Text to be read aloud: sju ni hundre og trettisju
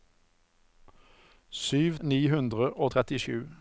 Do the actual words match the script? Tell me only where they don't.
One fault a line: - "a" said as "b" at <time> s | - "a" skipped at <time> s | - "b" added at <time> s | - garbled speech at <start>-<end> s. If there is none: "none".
none